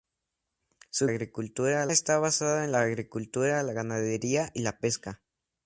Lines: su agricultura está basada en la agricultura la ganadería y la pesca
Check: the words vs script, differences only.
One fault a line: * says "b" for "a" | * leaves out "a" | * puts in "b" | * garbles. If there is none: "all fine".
all fine